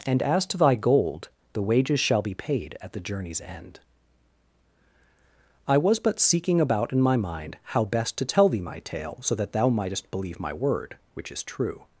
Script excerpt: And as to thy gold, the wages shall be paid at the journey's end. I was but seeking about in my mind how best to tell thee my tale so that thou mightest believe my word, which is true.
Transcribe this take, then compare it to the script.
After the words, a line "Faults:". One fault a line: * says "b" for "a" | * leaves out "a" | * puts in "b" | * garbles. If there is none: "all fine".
And as to thy gold, the wages shall be paid at the journey's end. I was but seeking about in my mind how best to tell thee my tale so that thou mightest believe my word, which is true.
Faults:
all fine